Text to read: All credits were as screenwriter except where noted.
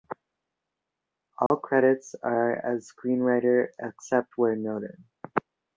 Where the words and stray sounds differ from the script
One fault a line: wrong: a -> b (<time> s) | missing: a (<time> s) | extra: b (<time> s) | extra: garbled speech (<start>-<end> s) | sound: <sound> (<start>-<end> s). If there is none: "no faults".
sound: dropout (1.5-1.5 s)
wrong: were -> are (2.2 s)